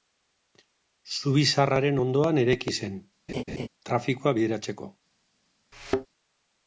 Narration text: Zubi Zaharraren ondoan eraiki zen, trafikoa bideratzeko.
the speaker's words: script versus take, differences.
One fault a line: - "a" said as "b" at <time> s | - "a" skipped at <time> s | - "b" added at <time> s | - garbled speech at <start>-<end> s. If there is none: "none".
none